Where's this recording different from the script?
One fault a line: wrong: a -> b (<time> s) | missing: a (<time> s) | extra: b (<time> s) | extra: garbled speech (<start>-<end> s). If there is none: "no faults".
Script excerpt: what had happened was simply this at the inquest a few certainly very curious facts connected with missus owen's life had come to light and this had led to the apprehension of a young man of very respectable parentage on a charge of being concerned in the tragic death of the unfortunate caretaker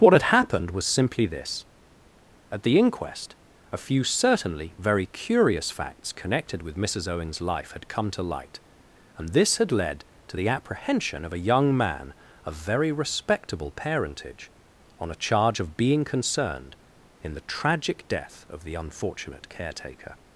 no faults